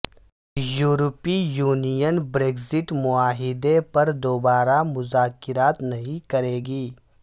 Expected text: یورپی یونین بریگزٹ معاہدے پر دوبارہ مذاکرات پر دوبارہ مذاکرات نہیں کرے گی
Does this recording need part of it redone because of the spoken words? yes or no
yes